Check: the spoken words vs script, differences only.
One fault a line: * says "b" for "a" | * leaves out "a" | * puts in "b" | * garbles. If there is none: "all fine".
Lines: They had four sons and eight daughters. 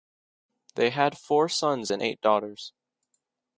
all fine